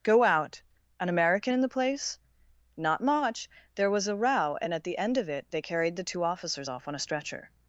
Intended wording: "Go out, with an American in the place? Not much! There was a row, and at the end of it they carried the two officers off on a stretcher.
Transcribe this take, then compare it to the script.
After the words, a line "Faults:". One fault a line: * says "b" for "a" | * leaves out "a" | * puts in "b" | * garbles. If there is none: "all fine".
"Go out, an American in the place? Not much! There was a row, and at the end of it they carried the two officers off on a stretcher.
Faults:
* leaves out "with"